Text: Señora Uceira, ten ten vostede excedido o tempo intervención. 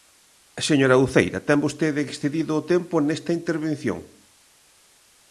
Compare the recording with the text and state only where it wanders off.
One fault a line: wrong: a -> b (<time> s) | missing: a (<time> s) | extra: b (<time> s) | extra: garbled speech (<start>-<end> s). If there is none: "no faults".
missing: ten (1.6 s)
extra: nesta (3.0 s)